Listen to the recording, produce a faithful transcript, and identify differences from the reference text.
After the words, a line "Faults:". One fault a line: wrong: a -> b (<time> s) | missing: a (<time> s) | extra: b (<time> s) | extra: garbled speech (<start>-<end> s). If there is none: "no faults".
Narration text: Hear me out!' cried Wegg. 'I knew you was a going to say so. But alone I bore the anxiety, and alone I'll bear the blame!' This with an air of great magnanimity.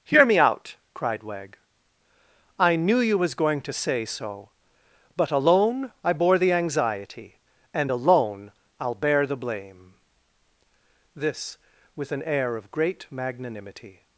Hear me out!' cried Wegg. 'I knew you was going to say so. But alone I bore the anxiety, and alone I'll bear the blame!' This with an air of great magnanimity.
Faults:
missing: a (3.3 s)